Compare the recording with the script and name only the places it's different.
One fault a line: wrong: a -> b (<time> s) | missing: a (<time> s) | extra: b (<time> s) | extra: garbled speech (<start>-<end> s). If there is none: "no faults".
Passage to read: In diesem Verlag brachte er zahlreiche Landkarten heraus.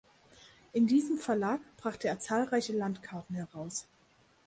no faults